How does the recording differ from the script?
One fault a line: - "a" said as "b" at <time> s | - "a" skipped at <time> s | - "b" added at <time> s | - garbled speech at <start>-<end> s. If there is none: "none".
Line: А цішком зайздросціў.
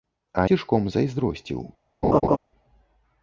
none